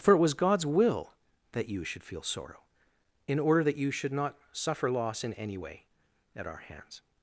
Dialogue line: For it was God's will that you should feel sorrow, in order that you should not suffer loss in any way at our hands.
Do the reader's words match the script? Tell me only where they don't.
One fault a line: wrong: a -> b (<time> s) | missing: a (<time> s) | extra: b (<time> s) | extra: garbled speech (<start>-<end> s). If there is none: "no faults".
no faults